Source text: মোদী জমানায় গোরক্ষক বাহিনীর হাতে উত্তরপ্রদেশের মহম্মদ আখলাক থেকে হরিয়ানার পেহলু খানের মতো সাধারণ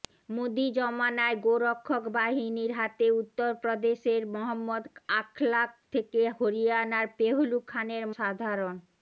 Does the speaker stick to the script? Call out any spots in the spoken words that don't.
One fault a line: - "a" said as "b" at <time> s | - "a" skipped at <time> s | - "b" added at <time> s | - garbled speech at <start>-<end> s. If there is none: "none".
- "মতো" skipped at 8.1 s